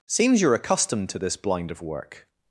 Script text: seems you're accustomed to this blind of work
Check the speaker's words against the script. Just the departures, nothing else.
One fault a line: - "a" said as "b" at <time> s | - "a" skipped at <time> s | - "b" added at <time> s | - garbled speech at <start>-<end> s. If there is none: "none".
none